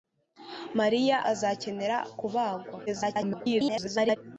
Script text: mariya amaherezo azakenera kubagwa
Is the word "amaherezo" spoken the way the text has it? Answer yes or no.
no